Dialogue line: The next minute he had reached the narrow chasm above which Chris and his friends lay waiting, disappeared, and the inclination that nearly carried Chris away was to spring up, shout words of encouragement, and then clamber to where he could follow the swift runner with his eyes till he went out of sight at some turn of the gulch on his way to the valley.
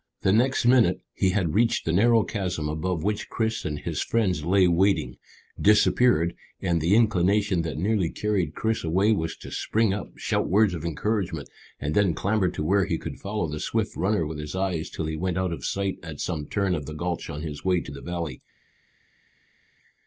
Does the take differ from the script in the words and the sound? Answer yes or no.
no